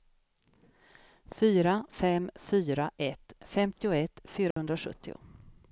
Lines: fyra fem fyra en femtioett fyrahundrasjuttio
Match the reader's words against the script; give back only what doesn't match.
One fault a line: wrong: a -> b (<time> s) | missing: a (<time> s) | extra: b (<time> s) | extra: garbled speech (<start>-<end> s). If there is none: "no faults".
wrong: en -> ett (3.0 s)